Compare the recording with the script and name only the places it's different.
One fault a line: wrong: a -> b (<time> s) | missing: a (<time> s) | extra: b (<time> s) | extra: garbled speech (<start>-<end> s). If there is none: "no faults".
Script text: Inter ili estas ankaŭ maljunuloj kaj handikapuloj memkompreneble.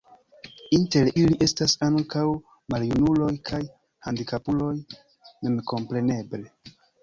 no faults